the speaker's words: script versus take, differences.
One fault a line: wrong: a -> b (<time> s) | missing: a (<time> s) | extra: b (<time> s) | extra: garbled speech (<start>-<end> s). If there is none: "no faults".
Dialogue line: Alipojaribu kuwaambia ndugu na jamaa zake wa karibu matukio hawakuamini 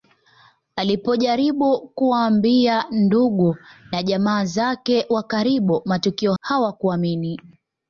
no faults